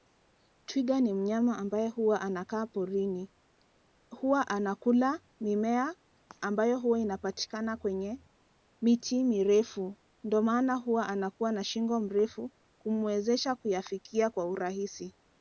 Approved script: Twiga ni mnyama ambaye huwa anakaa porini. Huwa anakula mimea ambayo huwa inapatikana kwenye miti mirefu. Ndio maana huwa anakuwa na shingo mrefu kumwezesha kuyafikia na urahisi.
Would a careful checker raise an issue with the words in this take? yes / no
yes